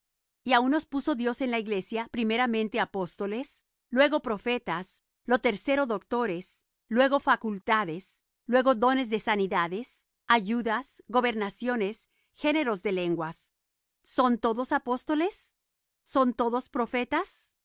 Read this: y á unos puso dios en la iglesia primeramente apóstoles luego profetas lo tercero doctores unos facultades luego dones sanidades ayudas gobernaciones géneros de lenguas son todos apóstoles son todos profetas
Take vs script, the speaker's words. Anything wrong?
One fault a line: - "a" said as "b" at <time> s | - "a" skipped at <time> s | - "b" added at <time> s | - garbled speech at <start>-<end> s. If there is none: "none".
- "unos" said as "luego" at 6.9 s
- "de" added at 9.1 s